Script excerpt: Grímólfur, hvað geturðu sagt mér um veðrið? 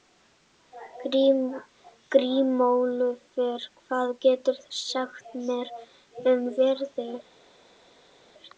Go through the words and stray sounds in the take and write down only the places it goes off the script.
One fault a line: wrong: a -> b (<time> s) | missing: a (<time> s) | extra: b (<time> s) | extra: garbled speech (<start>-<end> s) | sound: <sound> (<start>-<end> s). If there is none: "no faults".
no faults